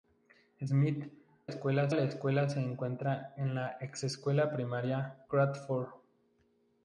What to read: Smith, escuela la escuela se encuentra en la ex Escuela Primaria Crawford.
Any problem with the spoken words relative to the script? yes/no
no